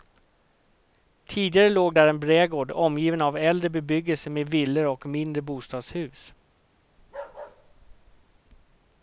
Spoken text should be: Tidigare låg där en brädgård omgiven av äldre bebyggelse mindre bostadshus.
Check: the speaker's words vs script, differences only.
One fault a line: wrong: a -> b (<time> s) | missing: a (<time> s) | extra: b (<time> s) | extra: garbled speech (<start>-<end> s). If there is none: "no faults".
extra: med villor och (4.3 s)